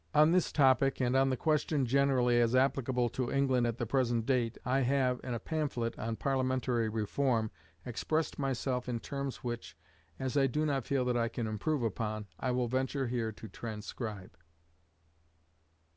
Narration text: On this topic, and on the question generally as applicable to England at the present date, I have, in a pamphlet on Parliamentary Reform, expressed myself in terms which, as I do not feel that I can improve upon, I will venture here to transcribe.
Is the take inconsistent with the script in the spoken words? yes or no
no